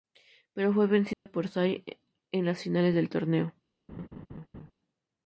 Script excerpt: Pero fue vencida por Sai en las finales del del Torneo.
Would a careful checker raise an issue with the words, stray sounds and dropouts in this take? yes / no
yes